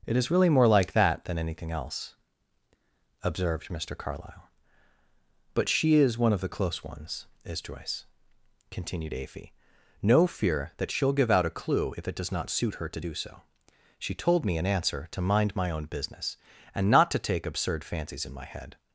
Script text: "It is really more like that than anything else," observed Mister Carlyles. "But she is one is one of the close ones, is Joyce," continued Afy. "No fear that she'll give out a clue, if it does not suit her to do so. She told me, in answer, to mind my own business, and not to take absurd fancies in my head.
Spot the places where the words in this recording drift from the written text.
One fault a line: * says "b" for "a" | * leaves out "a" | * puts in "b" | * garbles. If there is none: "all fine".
* says "Carlyle" for "Carlyles"
* leaves out "is one"